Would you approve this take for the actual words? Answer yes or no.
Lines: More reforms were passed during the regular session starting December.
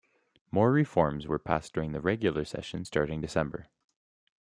yes